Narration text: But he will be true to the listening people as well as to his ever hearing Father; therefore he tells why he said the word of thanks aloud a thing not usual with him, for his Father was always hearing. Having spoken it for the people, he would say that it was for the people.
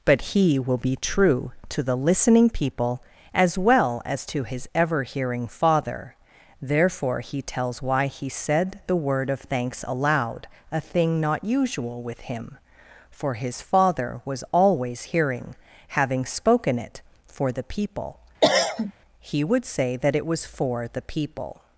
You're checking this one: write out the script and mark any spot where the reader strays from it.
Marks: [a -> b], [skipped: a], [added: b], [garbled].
But he will be true to the listening people as well as to his ever hearing Father; therefore he tells why he said the word of thanks aloud a thing not usual with him, for his Father was always hearing. Having spoken it for the people, he would say that it was for the people.